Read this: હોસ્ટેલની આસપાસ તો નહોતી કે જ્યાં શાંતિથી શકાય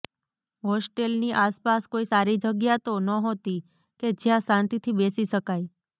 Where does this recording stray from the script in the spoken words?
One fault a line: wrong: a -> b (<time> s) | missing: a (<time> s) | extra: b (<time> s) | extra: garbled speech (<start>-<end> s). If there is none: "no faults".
extra: કોઈ સારી જગ્યા (1.9 s)
extra: બેસી (5.0 s)